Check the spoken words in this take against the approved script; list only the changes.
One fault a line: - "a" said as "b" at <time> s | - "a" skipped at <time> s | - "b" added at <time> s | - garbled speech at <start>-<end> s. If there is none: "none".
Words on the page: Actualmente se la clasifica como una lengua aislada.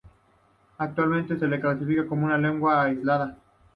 none